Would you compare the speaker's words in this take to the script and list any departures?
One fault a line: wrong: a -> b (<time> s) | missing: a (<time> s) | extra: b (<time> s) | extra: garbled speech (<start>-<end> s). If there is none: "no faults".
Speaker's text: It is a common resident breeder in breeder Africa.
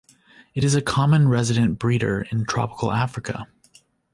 wrong: breeder -> tropical (2.5 s)